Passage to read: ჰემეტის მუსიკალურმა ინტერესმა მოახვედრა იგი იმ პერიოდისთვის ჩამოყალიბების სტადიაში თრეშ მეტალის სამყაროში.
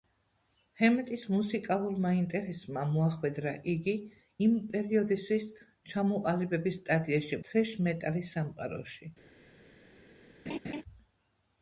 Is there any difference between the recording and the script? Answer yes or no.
no